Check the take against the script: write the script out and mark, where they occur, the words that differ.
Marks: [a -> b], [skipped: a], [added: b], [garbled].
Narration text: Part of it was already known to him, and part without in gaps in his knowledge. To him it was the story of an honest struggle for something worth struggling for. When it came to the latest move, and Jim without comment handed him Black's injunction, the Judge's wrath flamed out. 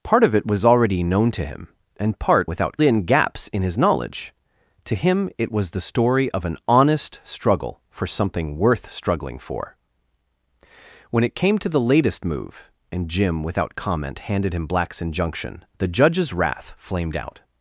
Part of it was already known to him, and part without in gaps in his knowledge. To him it was the story of an honest struggle for something worth struggling for. When it came to the latest move, and Jim without comment handed him Black's injunction, the Judge's wrath flamed out.